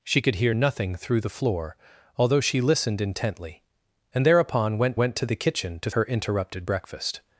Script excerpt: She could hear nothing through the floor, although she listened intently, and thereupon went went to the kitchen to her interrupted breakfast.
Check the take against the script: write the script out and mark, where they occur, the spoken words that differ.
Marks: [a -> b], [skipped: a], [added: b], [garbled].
She could hear nothing through the floor, although she listened intently, and thereupon went went to the kitchen to her interrupted breakfast.